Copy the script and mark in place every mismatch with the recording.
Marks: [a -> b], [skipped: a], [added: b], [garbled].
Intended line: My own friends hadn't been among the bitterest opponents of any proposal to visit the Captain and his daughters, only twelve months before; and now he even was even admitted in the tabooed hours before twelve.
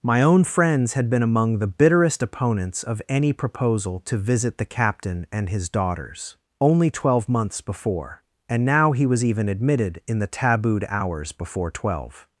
My own friends [hadn't -> had] been among the bitterest opponents of any proposal to visit the Captain and his daughters, only twelve months before; and now he [skipped: even] was even admitted in the tabooed hours before twelve.